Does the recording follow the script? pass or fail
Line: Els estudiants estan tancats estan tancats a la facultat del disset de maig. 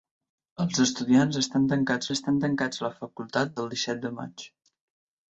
pass